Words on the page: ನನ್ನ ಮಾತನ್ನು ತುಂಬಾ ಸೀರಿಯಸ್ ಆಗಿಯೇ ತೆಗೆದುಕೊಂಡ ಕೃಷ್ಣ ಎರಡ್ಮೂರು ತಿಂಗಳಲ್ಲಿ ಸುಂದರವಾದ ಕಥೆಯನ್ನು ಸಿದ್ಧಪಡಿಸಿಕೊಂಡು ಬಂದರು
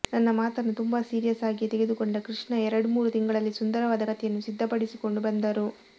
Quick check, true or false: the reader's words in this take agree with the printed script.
true